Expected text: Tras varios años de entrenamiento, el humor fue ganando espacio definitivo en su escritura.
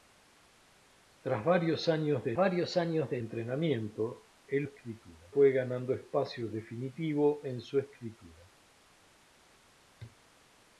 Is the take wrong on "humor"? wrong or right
wrong